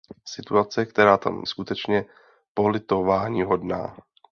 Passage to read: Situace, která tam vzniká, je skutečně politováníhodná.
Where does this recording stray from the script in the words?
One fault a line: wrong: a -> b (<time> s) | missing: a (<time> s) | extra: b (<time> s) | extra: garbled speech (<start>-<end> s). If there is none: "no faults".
missing: vzniká je (1.4 s)